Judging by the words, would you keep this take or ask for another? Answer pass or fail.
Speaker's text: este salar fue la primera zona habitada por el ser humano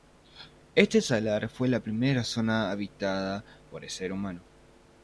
pass